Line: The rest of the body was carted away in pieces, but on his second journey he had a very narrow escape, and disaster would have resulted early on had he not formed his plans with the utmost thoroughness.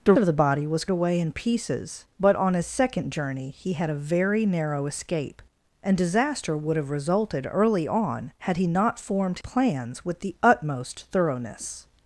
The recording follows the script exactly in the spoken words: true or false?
false